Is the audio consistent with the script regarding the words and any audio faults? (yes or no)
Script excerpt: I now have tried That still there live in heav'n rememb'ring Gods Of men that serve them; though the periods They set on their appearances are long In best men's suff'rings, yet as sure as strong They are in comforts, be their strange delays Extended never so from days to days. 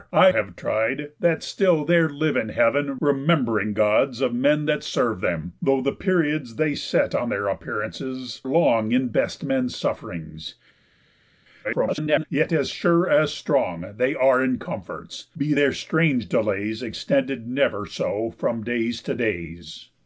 no